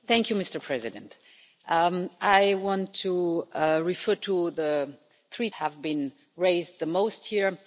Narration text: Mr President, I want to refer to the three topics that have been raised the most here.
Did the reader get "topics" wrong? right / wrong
wrong